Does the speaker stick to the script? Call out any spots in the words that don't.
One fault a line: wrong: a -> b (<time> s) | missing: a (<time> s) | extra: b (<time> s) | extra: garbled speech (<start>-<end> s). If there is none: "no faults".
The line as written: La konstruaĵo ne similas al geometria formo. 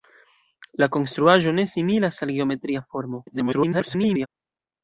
extra: garbled speech (3.3-4.3 s)